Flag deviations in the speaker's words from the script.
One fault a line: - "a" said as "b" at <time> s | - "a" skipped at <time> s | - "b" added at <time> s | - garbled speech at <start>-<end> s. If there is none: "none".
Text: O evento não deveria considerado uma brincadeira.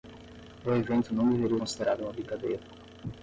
none